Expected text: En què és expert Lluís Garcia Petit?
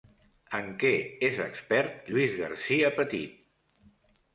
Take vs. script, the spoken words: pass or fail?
pass